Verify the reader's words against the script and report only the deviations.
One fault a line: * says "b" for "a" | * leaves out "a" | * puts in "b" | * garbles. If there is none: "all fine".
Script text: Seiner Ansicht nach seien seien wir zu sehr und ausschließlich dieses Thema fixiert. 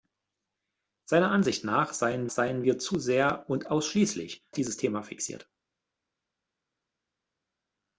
all fine